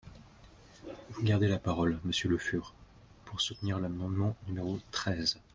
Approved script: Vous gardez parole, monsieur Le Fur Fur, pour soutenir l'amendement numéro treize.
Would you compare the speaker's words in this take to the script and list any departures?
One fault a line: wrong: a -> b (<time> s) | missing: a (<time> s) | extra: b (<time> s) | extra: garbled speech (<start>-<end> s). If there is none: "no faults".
extra: la (1.5 s)
missing: Fur (2.7 s)